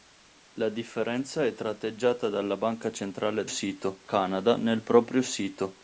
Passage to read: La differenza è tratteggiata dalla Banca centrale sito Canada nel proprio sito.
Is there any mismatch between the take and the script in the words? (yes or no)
no